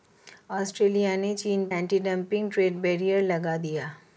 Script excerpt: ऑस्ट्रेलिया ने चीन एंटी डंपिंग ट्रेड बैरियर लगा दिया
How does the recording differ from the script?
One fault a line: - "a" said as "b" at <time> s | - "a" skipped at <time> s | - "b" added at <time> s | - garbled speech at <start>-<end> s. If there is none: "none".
none